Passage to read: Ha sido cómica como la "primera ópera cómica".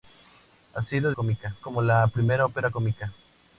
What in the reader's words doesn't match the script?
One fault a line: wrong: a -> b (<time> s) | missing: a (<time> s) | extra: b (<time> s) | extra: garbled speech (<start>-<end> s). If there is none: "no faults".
no faults